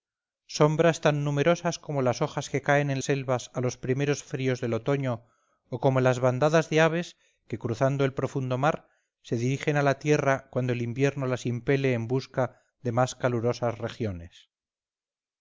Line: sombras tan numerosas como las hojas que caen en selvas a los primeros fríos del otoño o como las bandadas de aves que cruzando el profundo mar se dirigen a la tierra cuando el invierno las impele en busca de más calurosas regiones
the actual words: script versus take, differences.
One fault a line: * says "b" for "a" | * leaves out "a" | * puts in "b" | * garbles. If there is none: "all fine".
all fine